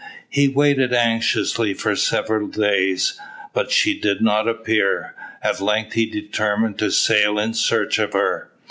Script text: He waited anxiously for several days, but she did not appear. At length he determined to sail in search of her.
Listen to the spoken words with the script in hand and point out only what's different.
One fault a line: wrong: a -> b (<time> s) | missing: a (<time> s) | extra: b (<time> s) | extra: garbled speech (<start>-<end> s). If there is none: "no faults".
no faults